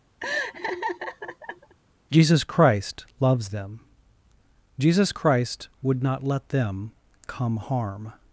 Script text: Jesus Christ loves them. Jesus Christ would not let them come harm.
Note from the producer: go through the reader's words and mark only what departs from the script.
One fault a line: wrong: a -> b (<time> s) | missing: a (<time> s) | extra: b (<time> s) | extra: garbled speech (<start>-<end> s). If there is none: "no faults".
no faults